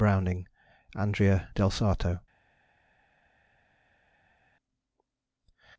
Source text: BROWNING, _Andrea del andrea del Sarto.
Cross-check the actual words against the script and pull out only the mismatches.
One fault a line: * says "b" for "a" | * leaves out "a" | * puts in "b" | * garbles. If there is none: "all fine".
* leaves out "andrea del"